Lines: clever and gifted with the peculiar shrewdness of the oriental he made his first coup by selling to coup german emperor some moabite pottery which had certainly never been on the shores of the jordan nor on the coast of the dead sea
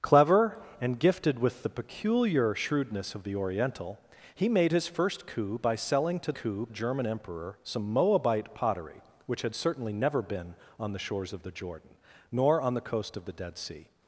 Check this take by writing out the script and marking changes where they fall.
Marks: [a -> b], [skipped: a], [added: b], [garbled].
clever and gifted with the peculiar shrewdness of the oriental he made his first coup by selling to coup german emperor some moabite pottery which had certainly never been on the shores of the jordan nor on the coast of the dead sea